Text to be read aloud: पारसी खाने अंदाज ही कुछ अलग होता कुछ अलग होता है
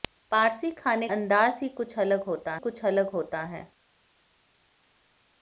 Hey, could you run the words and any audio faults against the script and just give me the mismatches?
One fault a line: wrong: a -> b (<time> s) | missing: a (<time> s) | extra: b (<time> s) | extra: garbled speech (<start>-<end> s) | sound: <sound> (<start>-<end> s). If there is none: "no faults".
no faults